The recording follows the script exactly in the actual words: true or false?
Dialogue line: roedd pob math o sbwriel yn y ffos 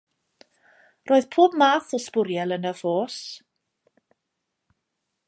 true